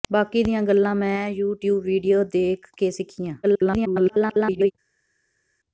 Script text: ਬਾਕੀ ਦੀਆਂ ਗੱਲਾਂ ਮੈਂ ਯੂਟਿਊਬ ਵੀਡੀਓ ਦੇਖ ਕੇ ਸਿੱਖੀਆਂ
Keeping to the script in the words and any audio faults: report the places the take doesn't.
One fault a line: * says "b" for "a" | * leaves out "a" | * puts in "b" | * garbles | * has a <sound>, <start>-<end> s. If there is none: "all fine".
* garbles